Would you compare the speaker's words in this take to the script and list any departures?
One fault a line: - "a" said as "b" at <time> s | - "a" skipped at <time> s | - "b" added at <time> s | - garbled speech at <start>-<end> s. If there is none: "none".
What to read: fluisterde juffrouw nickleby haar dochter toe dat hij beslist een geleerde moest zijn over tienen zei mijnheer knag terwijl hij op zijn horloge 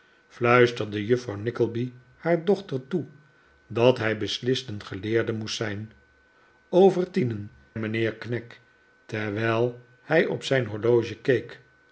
- "zei" skipped at 7.5 s